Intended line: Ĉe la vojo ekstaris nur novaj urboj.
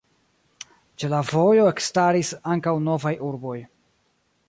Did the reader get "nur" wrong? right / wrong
wrong